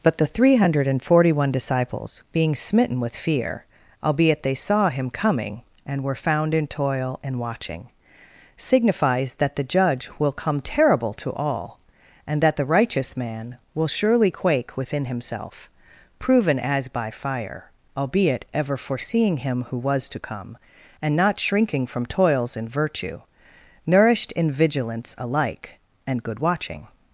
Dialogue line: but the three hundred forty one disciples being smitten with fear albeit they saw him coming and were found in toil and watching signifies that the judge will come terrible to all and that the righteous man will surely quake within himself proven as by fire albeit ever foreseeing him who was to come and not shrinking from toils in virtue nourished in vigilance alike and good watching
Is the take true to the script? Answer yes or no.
no